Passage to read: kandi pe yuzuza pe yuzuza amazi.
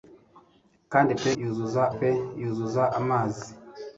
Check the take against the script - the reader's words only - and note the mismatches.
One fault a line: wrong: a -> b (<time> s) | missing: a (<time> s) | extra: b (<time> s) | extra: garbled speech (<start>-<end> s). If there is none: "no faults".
no faults